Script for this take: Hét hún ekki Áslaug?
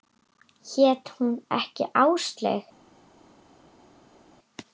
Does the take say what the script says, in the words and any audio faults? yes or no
yes